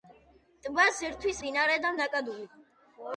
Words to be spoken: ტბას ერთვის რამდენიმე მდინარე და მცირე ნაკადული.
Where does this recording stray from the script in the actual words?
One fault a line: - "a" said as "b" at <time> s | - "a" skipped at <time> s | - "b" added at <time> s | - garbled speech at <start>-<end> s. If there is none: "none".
- "რამდენიმე" skipped at 1.4 s
- "მცირე" skipped at 1.9 s